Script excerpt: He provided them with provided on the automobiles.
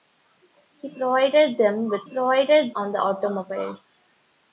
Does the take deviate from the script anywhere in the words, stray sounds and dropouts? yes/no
no